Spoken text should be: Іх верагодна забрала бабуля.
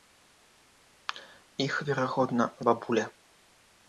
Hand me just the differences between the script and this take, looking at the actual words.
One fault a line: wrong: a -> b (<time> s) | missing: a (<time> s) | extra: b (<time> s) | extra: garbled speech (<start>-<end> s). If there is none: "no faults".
missing: забрала (2.5 s)